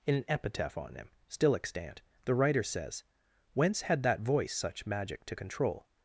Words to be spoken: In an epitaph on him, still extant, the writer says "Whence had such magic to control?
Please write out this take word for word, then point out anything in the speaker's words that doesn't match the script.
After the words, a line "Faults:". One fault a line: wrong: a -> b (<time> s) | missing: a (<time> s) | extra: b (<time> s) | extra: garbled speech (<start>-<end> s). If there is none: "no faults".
In an epitaph on him, still extant, the writer says "Whence had that voice such magic to control?
Faults:
extra: that voice (4.0 s)